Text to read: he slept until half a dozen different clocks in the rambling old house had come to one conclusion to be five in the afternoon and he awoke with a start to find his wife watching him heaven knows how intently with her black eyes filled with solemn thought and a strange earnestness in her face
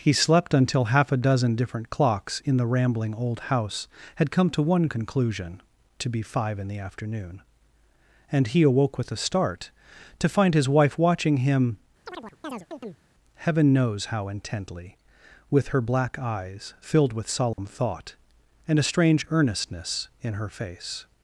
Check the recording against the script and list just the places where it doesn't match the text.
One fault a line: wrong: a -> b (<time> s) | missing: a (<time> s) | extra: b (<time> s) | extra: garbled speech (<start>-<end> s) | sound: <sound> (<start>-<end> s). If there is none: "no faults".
sound: chirp (12.1-13.0 s)
sound: dropout (17.5-17.6 s)